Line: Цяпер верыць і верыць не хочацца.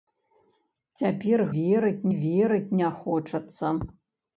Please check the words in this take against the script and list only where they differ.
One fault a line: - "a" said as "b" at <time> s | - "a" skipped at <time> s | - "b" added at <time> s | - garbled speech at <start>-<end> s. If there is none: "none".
none